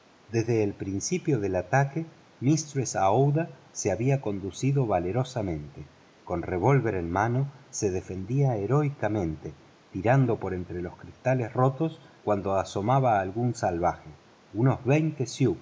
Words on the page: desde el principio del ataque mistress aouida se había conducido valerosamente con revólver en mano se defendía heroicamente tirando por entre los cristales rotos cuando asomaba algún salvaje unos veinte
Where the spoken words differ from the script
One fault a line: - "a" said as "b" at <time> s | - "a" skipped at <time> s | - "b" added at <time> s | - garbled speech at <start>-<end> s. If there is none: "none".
none